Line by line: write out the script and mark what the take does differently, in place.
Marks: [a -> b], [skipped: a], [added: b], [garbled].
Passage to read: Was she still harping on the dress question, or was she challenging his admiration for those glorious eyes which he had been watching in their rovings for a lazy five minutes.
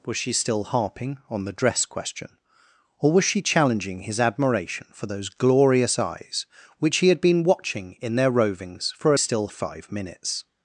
Was she still harping on the dress question, or was she challenging his admiration for those glorious eyes which he had been watching in their rovings for a [lazy -> still] five minutes.